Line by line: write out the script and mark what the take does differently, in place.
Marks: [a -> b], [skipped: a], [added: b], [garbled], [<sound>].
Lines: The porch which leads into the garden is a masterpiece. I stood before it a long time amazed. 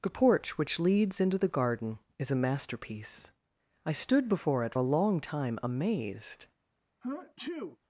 The porch which leads into the garden is a masterpiece. I stood before it a long time amazed. [sneeze]